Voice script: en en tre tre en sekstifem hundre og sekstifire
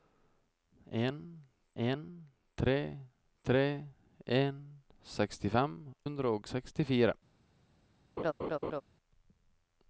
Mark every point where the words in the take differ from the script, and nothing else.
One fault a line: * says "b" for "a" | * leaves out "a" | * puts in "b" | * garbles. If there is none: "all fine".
all fine